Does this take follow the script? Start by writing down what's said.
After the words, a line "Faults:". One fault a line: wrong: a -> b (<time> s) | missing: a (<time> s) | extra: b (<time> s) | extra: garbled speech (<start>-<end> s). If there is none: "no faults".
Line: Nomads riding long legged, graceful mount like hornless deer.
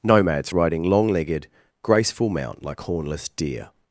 Nomads riding long legged, graceful mount like hornless deer.
Faults:
no faults